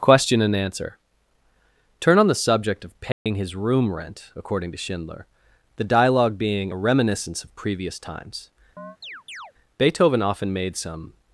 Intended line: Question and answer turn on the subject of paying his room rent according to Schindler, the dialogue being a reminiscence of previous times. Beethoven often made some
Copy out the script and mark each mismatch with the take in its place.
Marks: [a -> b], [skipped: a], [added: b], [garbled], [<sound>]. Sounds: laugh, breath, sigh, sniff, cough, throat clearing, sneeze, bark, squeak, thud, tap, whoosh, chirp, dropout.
Question and answer turn on the subject of paying [dropout] his room rent according to Schindler, the dialogue being a reminiscence of previous times. [chirp] Beethoven often made some